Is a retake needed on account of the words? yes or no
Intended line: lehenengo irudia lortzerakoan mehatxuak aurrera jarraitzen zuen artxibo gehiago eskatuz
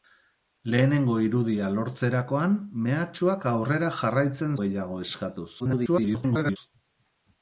yes